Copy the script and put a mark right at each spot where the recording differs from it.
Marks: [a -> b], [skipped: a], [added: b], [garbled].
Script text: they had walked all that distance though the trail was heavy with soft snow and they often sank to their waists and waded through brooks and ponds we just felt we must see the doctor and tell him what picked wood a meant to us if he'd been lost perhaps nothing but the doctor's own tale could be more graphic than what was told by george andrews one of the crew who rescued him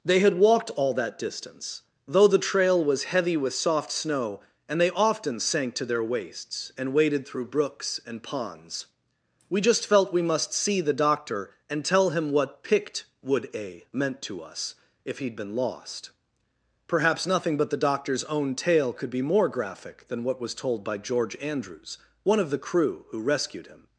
they had walked all that distance though the trail was heavy with soft snow and they often sank to their waists and waded through brooks and ponds we just felt we must see the doctor and tell him what picked wood a meant to us if he'd been lost perhaps nothing but the doctor's own tale could be more graphic than what was told by george andrews one of the crew who rescued him